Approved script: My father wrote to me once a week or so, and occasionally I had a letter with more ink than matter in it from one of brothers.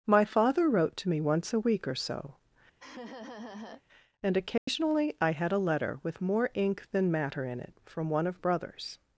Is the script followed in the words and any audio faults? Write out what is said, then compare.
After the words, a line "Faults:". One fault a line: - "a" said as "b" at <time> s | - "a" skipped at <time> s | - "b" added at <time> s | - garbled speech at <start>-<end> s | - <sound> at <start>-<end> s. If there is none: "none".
My father wrote to me once a week or so, and occasionally I had a letter with more ink than matter in it from one of brothers.
Faults:
- laugh at 2.8-3.8 s
- dropout at 4.6-4.7 s